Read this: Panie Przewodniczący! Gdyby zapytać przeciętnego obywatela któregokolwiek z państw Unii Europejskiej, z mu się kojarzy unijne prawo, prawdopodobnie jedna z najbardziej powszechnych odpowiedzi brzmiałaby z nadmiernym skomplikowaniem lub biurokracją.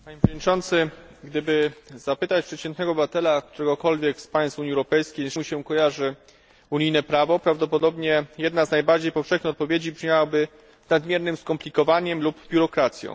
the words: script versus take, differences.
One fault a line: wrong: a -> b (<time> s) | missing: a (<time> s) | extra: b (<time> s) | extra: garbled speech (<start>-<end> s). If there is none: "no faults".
no faults